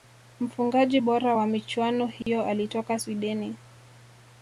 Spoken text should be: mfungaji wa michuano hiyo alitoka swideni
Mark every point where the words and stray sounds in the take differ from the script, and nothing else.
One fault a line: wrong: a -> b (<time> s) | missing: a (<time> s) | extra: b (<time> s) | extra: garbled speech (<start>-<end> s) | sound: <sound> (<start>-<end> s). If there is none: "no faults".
extra: bora (1.0 s)
sound: dropout (2.2-2.3 s)